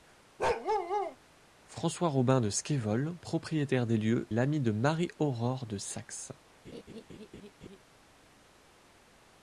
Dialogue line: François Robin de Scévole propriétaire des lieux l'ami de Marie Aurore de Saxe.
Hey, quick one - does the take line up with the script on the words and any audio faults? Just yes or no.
no